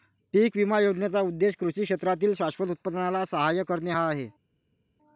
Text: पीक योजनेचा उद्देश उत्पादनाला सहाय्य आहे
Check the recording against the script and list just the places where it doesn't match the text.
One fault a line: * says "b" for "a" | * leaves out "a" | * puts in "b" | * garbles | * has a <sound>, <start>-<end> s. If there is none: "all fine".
* puts in "विमा"
* puts in "कृषी क्षेत्रातील शाश्वत"
* puts in "करणे हा"